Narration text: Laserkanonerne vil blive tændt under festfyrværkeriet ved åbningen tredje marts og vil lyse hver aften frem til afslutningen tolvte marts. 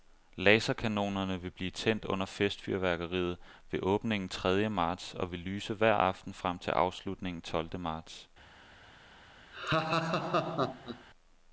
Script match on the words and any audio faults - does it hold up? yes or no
no